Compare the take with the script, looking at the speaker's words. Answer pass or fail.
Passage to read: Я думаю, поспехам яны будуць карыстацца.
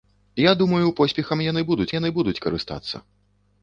fail